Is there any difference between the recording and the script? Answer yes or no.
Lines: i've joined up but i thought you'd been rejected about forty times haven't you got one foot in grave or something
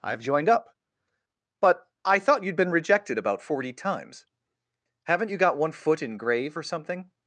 no